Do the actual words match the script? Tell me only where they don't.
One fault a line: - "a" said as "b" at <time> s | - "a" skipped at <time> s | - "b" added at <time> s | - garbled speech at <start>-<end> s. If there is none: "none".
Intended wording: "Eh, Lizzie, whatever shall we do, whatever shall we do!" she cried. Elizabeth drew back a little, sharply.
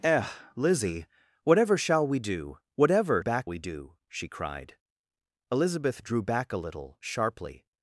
- "shall" said as "back" at 3.2 s